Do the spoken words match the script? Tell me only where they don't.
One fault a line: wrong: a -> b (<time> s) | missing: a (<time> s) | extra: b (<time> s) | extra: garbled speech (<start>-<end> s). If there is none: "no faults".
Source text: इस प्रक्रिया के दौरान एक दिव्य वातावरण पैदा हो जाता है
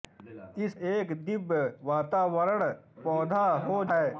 missing: प्रक्रिया के दौरान (0.7 s)
missing: जाता (3.8 s)